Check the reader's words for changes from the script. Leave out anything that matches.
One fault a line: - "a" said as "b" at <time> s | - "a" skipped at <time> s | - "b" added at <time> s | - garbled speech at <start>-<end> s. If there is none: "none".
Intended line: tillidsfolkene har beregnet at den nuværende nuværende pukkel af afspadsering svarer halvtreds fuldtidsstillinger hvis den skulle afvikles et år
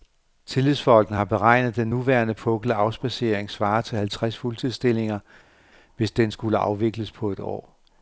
- "nuværende" skipped at 2.3 s
- "til" added at 3.8 s
- "på" added at 7.1 s